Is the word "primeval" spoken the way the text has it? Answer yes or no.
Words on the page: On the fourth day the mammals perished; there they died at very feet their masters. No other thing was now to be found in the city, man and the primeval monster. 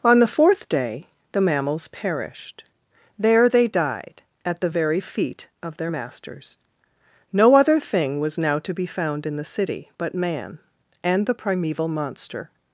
yes